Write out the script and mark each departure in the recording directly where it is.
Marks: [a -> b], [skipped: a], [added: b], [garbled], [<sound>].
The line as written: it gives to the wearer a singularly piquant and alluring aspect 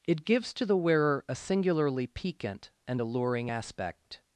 it gives to the wearer a singularly piquant and alluring aspect